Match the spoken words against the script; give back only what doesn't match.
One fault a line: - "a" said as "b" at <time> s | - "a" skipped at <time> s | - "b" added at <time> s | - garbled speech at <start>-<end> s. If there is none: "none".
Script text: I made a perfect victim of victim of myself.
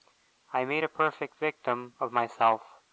- "victim of" skipped at 2.1 s